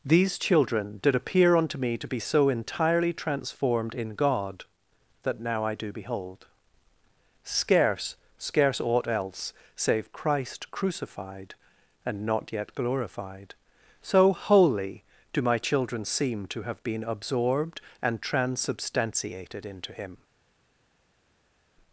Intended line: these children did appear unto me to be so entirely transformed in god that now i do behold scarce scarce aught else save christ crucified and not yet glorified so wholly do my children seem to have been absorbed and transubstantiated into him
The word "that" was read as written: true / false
true